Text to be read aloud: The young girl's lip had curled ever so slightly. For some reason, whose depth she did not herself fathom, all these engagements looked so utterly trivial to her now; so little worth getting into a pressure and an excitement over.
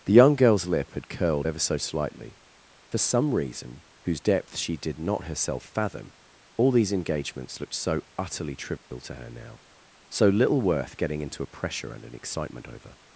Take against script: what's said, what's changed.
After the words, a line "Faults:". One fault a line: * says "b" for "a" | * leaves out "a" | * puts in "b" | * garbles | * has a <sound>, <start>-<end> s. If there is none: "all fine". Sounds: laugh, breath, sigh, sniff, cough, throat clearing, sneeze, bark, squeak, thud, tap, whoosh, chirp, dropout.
The young girl's lip had curled ever so slightly. For some reason, whose depth she did not herself fathom, all these engagements looked so utterly trivial to her now; so little worth getting into a pressure and an excitement over.
Faults:
* has a dropout, 8.8-8.9 s